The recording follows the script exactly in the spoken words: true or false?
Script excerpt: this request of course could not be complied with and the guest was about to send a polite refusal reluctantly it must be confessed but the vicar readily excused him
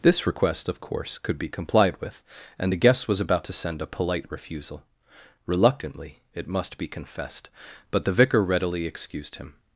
false